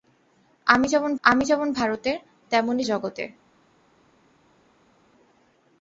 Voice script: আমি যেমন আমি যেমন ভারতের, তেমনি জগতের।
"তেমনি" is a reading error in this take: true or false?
false